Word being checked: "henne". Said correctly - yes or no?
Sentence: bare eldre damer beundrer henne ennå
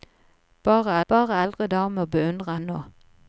no